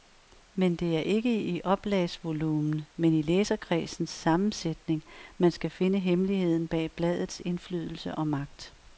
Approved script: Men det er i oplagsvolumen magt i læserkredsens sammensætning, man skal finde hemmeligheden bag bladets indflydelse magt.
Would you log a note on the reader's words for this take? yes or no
yes